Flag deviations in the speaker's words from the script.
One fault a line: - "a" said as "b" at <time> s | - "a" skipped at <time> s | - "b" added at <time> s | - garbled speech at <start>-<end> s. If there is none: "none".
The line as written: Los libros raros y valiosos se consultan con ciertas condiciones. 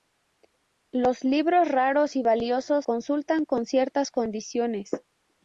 - "se" skipped at 2.9 s